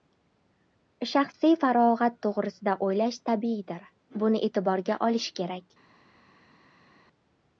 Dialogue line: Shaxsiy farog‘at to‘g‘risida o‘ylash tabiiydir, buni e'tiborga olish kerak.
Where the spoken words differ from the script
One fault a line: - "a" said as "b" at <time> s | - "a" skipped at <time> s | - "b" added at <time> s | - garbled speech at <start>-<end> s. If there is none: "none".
none